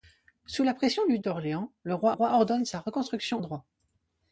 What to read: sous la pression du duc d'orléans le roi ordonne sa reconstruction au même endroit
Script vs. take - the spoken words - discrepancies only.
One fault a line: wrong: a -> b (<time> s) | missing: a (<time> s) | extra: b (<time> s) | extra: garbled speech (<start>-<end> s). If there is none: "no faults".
missing: duc (1.2 s)
extra: roi (2.1 s)
missing: même (3.4 s)